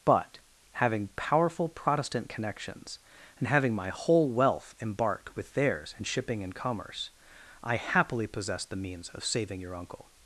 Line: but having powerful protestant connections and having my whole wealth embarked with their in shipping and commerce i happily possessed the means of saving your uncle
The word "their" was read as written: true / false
false